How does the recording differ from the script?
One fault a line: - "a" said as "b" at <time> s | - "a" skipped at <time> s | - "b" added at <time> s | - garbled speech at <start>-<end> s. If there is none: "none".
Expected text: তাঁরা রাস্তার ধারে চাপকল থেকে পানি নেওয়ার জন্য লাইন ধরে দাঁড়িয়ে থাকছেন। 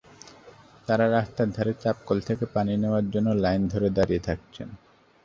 none